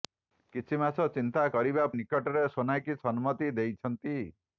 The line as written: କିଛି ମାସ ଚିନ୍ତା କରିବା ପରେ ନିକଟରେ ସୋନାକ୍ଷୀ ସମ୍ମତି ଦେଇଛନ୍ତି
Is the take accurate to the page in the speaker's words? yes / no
no